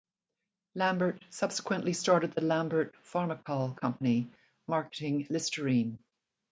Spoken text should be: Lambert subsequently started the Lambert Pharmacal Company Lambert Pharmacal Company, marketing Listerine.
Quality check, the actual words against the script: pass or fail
fail